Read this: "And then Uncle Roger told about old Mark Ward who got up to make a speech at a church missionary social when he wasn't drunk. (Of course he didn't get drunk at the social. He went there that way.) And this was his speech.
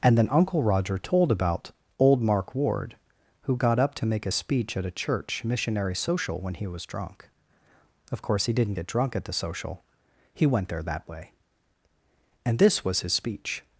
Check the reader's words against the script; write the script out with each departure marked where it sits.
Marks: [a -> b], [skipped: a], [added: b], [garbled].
"And then Uncle Roger told about old Mark Ward who got up to make a speech at a church missionary social when he [wasn't -> was] drunk. (Of course he didn't get drunk at the social. He went there that way.) And this was his speech.